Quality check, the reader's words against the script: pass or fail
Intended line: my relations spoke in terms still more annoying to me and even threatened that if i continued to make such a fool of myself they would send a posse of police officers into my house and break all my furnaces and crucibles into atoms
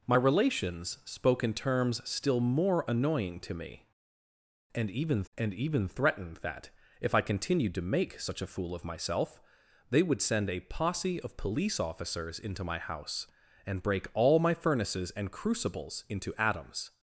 fail